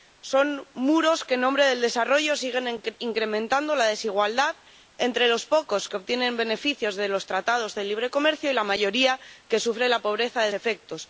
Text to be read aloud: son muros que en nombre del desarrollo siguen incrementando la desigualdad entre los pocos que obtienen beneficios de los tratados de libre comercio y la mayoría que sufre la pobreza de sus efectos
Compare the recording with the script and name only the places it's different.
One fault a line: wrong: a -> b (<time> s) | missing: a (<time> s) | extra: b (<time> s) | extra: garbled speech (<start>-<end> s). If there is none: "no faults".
missing: sus (10.5 s)